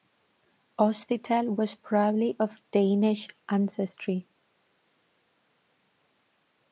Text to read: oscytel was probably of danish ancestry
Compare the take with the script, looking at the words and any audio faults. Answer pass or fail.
pass